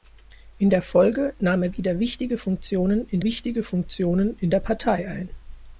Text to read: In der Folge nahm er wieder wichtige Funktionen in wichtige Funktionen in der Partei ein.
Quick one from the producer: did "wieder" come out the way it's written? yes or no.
yes